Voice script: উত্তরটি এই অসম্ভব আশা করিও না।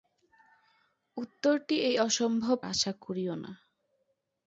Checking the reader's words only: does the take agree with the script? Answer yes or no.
yes